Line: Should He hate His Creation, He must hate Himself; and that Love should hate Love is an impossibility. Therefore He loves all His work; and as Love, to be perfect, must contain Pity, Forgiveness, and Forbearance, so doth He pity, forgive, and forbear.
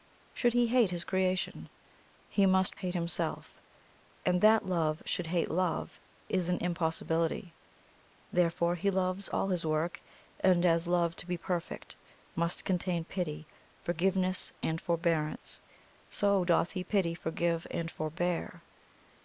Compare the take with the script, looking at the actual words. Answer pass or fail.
pass